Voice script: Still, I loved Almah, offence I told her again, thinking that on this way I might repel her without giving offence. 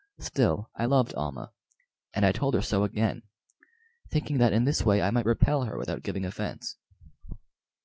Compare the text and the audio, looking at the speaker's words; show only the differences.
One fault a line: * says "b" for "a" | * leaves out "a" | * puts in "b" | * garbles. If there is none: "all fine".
* says "and" for "offence"
* puts in "so"
* says "in" for "on"